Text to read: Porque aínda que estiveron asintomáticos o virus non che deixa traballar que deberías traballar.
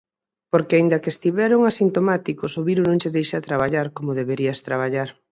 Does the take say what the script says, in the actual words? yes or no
no